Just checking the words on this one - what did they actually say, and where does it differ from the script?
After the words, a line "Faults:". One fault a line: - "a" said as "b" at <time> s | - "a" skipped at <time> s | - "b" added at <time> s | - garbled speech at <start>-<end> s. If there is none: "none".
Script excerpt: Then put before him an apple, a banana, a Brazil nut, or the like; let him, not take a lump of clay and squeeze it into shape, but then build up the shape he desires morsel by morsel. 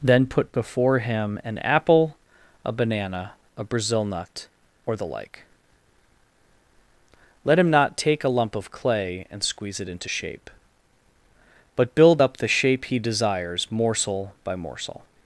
Then put before him an apple, a banana, a Brazil nut, or the like; let him, not take a lump of clay and squeeze it into shape, but build up the shape he desires morsel by morsel.
Faults:
- "then" skipped at 11.9 s